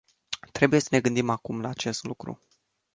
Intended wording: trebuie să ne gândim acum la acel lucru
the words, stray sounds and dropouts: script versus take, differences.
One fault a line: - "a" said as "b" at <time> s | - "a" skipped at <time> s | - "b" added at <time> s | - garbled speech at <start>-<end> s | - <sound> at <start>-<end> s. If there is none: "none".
- "acel" said as "acest" at 1.7 s